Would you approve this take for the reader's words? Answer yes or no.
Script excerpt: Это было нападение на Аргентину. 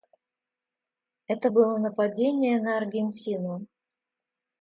yes